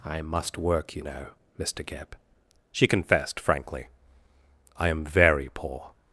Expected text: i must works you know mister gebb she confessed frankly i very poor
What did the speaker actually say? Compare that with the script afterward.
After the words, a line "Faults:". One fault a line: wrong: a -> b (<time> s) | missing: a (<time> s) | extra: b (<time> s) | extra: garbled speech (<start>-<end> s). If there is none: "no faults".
i must work you know mister gebb she confessed frankly i am very poor
Faults:
wrong: works -> work (0.6 s)
extra: am (4.9 s)